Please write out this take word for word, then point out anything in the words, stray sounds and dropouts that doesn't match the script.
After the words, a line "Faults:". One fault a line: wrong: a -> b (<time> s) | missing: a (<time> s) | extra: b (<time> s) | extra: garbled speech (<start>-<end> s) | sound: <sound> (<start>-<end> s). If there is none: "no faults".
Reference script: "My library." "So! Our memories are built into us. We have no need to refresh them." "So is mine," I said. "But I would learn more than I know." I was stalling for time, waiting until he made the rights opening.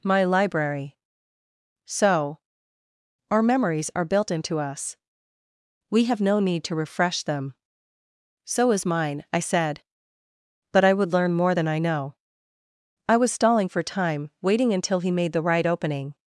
"My library." "So! Our memories are built into us. We have no need to refresh them." "So is mine," I said. "But I would learn more than I know." I was stalling for time, waiting until he made the right opening.
Faults:
wrong: rights -> right (15.4 s)